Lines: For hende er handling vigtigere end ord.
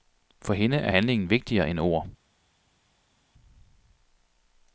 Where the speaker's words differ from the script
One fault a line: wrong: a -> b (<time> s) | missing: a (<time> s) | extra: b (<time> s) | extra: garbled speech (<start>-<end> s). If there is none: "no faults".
no faults